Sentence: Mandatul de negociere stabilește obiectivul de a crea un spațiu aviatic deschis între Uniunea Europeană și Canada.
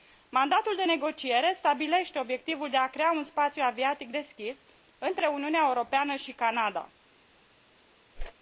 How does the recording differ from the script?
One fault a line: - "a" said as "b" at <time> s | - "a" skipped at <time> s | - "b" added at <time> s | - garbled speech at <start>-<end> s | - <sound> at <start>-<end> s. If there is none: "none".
- whoosh at 8.2-8.3 s